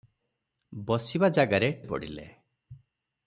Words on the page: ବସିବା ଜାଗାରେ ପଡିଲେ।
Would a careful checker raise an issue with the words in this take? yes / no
no